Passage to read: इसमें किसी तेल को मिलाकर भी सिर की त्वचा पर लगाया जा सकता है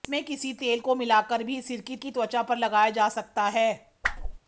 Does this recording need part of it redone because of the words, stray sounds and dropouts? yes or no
yes